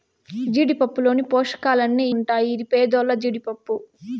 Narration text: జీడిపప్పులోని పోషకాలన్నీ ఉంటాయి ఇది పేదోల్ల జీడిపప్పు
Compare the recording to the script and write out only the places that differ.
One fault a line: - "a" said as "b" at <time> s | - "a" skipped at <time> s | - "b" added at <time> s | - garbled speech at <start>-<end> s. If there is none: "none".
none